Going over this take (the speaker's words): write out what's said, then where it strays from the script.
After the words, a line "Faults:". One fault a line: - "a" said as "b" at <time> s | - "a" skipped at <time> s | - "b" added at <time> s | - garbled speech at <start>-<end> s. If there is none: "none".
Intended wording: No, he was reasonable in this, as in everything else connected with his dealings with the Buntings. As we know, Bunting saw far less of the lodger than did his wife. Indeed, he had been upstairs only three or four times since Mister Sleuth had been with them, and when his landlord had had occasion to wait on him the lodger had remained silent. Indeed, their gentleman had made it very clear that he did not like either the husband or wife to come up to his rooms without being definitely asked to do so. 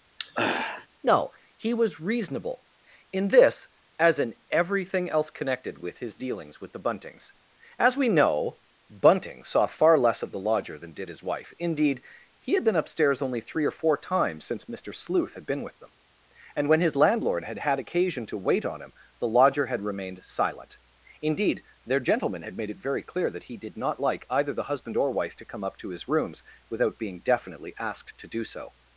No, he was reasonable in this, as in everything else connected with his dealings with the Buntings. As we know, Bunting saw far less of the lodger than did his wife. Indeed, he had been upstairs only three or four times since Mister Sleuth had been with them, and when his landlord had had occasion to wait on him the lodger had remained silent. Indeed, their gentleman had made it very clear that he did not like either the husband or wife to come up to his rooms without being definitely asked to do so.
Faults:
none